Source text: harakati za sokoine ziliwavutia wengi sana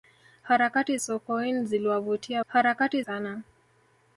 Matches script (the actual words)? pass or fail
fail